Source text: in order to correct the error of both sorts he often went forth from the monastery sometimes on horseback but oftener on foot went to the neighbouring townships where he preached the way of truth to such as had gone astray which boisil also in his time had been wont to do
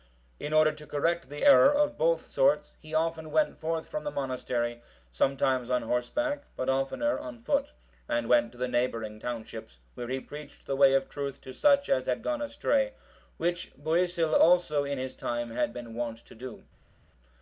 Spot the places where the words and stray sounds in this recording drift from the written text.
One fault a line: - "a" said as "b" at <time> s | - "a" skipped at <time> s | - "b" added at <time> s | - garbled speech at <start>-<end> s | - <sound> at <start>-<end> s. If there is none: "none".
- "and" added at 8.1 s